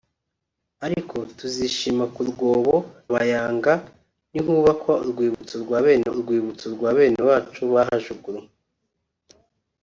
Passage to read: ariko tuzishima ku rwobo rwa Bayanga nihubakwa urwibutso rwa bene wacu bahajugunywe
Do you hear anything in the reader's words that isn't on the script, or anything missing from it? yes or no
yes